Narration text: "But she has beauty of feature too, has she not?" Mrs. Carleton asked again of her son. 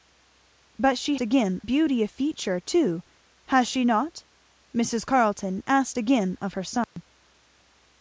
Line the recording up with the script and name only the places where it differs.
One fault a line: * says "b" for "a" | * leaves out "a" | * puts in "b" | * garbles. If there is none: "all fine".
* says "again" for "has"